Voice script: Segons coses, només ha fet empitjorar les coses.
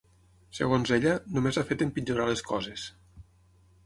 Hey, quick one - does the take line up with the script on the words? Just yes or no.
no